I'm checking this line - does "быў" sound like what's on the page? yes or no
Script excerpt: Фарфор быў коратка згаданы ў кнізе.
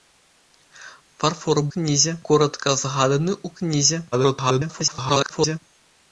no